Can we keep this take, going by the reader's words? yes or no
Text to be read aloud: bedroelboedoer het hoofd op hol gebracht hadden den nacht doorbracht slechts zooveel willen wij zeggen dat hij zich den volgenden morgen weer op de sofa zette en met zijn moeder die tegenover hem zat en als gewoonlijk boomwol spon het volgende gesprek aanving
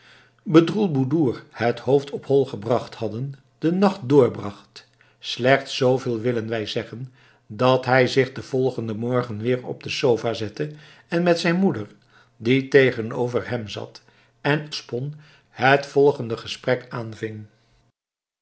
no